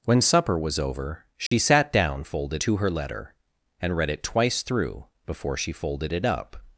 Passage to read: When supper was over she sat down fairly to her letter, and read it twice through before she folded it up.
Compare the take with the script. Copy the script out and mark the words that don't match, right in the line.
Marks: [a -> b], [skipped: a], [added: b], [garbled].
When supper was over she sat down [fairly -> folded] to her letter, and read it twice through before she folded it up.